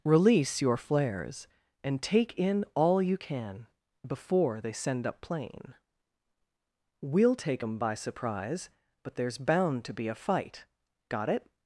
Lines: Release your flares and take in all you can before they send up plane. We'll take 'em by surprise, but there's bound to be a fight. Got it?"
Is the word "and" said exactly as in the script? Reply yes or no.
yes